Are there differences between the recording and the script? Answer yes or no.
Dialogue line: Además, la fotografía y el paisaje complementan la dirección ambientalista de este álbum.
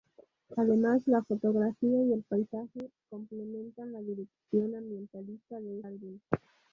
yes